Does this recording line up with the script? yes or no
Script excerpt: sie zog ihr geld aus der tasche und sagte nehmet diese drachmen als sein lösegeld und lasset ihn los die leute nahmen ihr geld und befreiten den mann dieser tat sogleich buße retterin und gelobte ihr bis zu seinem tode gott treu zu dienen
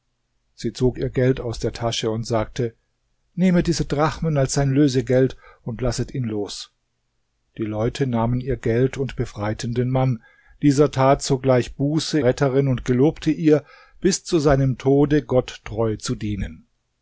yes